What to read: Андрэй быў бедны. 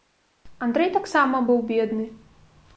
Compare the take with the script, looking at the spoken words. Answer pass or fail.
fail